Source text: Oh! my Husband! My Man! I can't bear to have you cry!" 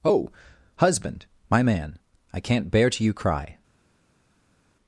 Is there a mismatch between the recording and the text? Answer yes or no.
yes